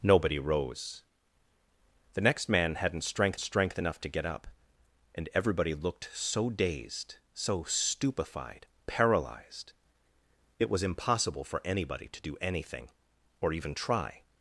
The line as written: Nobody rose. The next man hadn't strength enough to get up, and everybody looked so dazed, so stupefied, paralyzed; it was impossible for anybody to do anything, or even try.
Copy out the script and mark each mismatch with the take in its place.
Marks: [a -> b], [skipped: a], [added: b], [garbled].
Nobody rose. The next man hadn't strength [added: strength] enough to get up, and everybody looked so dazed, so stupefied, paralyzed; it was impossible for anybody to do anything, or even try.